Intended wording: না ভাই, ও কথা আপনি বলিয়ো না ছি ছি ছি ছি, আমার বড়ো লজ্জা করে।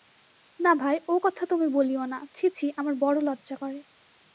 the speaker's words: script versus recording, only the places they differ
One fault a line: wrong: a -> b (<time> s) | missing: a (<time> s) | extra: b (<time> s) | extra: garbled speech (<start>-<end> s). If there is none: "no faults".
wrong: আপনি -> তুমি (1.5 s)
missing: ছি ছি (2.7 s)